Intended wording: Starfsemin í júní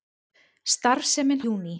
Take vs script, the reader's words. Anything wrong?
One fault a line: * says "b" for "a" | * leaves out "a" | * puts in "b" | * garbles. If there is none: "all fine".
all fine